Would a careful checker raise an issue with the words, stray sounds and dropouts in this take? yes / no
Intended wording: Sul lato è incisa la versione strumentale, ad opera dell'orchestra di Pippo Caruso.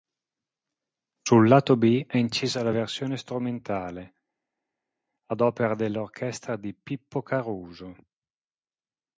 yes